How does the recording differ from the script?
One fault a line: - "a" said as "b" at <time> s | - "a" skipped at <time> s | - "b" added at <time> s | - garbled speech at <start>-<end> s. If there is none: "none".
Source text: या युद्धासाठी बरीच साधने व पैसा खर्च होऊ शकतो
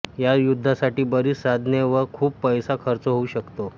- "खूप" added at 2.1 s